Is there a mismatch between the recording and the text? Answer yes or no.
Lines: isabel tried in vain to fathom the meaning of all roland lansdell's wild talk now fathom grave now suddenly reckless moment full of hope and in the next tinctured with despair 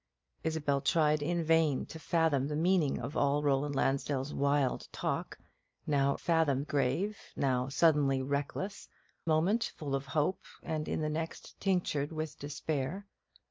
no